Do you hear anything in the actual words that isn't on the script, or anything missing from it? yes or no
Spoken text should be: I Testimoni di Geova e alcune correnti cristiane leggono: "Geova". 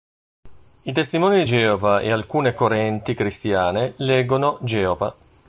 no